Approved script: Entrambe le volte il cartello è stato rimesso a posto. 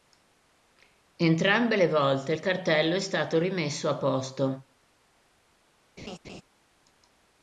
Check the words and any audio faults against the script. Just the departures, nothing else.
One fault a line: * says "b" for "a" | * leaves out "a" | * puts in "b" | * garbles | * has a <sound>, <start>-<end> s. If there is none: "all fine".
* has a laugh, 6.0-6.4 s